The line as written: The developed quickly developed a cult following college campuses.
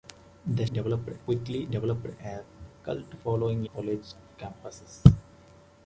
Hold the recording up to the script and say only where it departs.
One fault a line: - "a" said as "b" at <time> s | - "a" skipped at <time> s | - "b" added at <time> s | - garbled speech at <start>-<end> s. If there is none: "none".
none